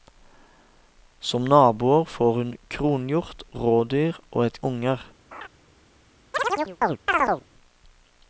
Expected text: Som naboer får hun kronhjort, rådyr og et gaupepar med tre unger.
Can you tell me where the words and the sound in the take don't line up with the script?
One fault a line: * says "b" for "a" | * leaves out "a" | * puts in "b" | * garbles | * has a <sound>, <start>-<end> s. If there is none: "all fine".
* leaves out "gaupepar med tre"
* has a laugh, 5.3-5.5 s
* has a chirp, 6.3-7.4 s